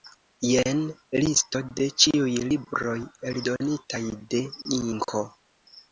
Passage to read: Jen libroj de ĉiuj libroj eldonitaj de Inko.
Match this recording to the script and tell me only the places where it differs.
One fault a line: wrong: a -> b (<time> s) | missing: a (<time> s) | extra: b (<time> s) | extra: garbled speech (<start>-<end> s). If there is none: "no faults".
wrong: libroj -> listo (1.2 s)